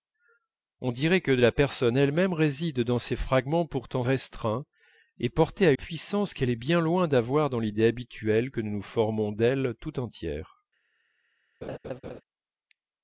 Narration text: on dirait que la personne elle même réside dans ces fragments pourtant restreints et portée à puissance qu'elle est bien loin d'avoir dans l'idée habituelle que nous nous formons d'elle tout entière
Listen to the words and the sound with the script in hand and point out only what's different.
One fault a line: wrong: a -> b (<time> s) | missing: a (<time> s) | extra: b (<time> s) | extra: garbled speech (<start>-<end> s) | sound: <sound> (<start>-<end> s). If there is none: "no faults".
sound: laugh (11.6-12.2 s)